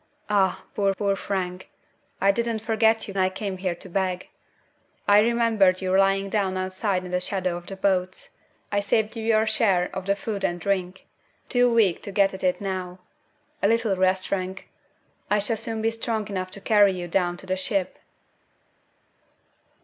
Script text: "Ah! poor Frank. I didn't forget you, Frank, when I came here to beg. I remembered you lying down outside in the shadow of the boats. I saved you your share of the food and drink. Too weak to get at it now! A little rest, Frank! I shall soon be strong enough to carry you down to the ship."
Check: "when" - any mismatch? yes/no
yes